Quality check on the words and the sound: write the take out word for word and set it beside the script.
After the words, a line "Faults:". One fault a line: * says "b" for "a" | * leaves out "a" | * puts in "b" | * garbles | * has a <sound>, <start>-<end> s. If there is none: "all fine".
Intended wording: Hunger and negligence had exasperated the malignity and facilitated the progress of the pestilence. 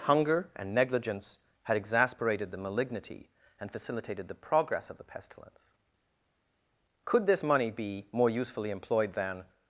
Hunger and negligence had exasperated the malignity and facilitated the progress of the pestilence. Could this money be more usefully employed than
Faults:
* puts in "Could this money be more usefully employed than"